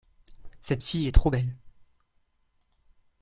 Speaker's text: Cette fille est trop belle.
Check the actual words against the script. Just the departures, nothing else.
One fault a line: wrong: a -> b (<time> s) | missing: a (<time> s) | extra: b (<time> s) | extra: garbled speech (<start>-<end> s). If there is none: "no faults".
no faults